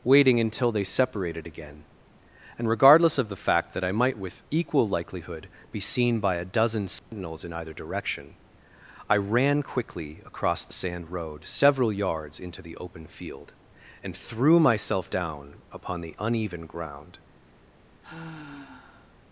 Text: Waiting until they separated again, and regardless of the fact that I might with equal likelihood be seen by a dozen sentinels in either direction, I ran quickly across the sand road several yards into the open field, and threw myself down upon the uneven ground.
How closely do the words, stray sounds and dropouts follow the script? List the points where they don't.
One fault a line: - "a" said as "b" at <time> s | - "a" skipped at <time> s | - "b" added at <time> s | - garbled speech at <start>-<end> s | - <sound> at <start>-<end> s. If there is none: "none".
- dropout at 7.0-7.1 s
- sigh at 18.0-19.2 s